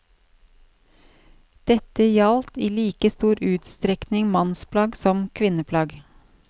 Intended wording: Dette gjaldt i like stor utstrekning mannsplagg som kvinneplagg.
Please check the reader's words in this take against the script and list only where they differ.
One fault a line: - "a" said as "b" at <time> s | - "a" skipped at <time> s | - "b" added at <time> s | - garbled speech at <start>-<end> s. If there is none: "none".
none